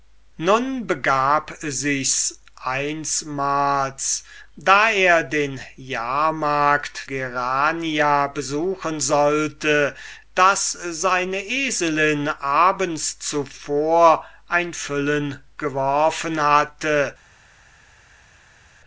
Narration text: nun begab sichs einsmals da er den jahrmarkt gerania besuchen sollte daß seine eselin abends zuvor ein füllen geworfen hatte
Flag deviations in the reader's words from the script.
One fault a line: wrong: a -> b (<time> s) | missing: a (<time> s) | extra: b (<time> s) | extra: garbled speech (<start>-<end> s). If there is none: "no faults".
no faults